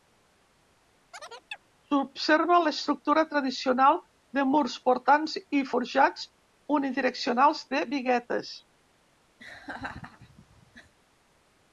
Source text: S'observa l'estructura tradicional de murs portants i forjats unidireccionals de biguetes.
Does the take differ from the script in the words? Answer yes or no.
no